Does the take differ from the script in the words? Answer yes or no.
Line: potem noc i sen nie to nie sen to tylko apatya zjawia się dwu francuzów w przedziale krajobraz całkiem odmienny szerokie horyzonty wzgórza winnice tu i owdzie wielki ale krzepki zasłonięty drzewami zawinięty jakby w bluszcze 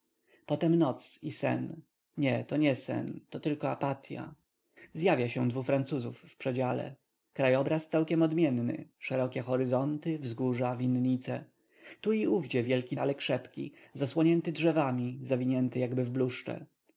no